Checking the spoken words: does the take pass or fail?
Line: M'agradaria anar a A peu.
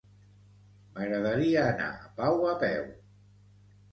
fail